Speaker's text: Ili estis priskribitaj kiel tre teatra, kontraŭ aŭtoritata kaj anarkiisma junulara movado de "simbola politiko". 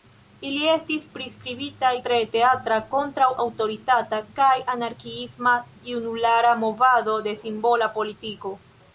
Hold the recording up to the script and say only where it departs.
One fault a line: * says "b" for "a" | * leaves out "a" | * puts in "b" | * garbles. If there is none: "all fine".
* leaves out "kiel"